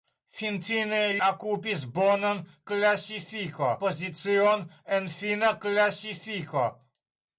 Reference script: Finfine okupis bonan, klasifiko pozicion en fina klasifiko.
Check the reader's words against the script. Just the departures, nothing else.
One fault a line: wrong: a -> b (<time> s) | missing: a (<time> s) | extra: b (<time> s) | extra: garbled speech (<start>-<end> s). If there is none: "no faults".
no faults